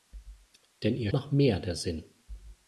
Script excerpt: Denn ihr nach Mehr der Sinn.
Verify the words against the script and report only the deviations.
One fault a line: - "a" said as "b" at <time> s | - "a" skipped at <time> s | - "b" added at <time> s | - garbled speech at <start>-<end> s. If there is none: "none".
none